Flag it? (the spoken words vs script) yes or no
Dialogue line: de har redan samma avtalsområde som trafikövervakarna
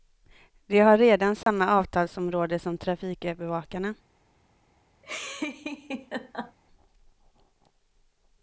no